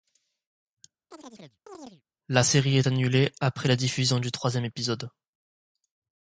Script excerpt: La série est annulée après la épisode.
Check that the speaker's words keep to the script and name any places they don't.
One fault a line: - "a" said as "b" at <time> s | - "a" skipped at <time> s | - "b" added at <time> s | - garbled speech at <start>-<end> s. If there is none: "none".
- "diffusion du troisième" added at 3.7 s